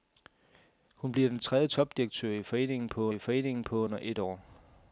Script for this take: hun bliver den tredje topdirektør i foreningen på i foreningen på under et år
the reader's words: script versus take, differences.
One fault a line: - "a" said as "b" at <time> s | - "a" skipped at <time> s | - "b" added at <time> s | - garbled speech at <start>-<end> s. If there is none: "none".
none